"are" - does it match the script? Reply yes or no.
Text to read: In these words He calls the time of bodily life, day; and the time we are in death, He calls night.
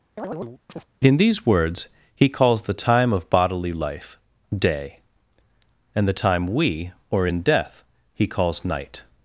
no